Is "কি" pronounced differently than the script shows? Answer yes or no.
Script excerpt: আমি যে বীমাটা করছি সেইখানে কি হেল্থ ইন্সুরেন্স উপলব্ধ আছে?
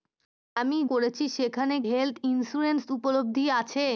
yes